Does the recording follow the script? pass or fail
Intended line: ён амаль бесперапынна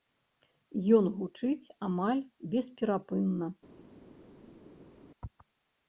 fail